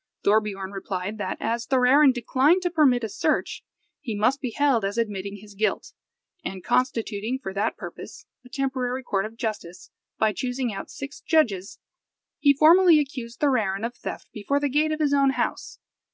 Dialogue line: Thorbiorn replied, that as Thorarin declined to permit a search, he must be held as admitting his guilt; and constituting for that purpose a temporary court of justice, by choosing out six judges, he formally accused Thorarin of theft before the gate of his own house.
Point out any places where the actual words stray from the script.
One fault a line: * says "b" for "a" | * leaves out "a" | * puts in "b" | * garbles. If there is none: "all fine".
all fine